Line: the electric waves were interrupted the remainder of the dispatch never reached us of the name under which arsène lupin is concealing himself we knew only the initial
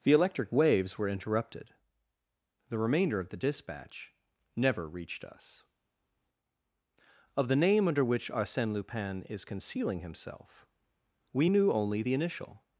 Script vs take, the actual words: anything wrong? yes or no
no